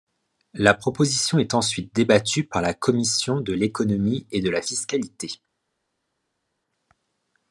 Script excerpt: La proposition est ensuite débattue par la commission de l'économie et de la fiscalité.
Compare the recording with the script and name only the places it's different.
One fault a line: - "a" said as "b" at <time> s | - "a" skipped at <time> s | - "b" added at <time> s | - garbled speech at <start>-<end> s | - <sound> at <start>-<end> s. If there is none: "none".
none